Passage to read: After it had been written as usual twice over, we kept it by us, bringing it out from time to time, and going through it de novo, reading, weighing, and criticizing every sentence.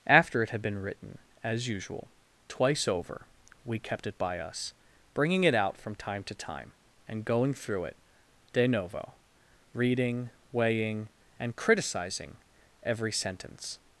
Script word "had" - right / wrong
right